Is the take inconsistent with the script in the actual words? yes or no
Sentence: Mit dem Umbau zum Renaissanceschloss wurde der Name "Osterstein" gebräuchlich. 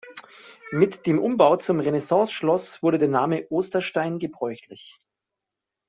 no